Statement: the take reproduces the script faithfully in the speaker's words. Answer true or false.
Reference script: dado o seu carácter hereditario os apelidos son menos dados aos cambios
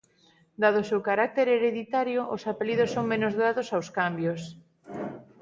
true